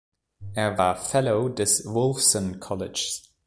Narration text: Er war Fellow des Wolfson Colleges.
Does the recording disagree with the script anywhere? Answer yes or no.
no